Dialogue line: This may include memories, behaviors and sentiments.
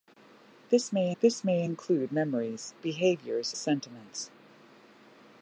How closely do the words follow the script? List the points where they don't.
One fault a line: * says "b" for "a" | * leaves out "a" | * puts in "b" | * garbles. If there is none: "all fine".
* puts in "this may"
* leaves out "and"